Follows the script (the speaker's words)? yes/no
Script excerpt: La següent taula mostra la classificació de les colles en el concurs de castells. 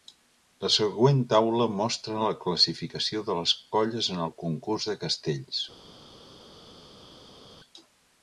yes